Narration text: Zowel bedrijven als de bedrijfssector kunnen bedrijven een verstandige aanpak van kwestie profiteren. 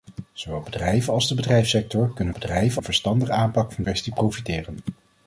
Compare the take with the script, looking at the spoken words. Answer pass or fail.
pass